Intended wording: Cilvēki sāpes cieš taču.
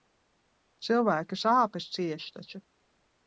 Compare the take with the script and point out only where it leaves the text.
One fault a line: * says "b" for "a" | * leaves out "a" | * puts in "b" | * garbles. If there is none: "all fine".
all fine